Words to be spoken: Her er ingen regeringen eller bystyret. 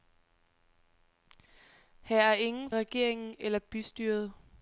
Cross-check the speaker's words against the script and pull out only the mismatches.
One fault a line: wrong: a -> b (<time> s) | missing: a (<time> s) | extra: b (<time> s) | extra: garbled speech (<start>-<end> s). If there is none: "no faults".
no faults